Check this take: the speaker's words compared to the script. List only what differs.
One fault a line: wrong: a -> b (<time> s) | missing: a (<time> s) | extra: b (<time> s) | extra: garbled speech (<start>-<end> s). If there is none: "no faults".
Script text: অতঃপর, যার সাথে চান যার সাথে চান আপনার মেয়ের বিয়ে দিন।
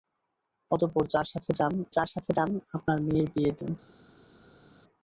no faults